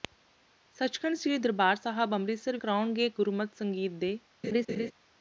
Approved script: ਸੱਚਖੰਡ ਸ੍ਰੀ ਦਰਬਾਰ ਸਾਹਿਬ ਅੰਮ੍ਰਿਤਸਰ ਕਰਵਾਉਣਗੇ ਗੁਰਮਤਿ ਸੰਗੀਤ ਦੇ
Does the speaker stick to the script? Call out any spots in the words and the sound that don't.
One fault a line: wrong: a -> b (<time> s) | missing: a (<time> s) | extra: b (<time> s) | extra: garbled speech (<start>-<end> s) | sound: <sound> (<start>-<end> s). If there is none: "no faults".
sound: laugh (4.4-4.9 s)